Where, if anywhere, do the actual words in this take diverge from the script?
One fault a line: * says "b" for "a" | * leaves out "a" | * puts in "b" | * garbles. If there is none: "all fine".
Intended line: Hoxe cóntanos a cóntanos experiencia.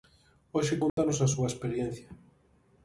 * says "súa" for "cóntanos"